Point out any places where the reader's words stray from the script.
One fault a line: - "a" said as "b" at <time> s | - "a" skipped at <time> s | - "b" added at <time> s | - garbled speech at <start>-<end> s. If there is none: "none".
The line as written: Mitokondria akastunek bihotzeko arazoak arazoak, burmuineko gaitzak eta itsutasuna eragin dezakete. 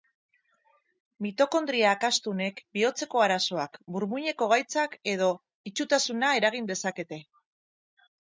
- "arazoak" skipped at 3.8 s
- "eta" said as "edo" at 5.2 s